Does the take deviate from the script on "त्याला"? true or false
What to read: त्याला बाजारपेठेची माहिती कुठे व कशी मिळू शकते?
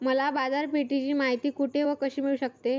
true